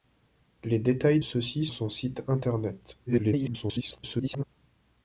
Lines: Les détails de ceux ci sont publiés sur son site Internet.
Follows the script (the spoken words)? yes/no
no